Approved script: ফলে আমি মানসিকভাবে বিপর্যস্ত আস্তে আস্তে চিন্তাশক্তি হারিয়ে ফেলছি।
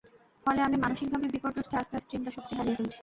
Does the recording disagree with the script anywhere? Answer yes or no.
no